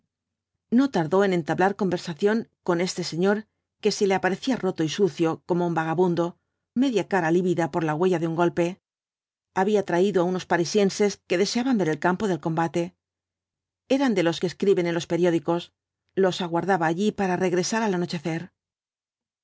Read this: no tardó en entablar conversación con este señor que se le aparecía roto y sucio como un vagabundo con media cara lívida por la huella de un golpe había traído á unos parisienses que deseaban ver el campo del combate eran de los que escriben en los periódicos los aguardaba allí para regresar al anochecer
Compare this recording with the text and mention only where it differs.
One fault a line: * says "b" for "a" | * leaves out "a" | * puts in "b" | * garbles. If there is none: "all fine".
* leaves out "con"